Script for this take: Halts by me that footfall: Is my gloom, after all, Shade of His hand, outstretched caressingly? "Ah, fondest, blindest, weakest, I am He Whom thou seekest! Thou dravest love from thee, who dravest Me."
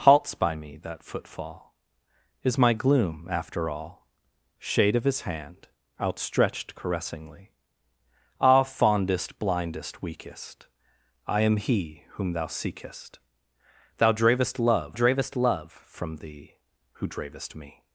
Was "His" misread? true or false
false